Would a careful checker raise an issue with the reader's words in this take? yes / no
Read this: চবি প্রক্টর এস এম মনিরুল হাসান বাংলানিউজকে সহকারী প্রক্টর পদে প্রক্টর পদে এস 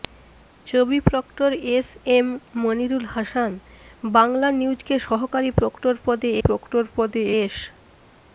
no